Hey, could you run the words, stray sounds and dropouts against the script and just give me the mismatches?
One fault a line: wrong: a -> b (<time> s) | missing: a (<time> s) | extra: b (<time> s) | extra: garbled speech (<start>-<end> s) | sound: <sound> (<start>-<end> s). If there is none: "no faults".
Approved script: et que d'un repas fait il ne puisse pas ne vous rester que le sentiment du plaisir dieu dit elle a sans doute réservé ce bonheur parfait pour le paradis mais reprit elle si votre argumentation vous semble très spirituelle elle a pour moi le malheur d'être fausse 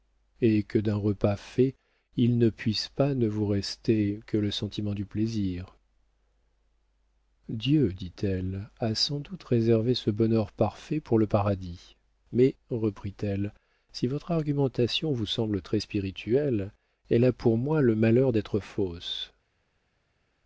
no faults